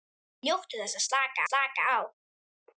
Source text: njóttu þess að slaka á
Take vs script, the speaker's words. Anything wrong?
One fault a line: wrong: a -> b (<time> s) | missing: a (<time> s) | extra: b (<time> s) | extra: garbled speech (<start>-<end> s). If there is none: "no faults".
extra: slaka (1.5 s)